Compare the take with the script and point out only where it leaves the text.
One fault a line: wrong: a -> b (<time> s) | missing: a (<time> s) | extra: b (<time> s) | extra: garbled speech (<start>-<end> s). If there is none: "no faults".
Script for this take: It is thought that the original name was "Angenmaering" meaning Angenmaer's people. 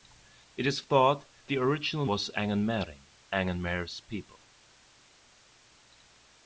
missing: that (1.2 s)
missing: name (2.0 s)
missing: meaning (3.0 s)